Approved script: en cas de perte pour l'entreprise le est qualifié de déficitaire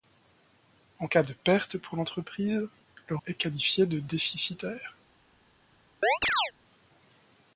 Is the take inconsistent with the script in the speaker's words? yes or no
no